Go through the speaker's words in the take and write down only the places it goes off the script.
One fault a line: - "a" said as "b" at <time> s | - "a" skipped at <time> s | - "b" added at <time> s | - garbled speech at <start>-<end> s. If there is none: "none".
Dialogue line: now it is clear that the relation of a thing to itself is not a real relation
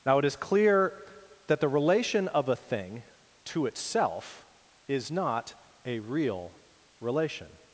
none